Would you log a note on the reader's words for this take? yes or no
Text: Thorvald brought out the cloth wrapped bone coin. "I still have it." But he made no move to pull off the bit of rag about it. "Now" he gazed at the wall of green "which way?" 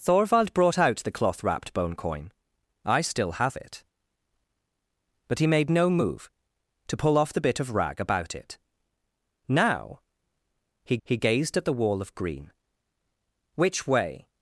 yes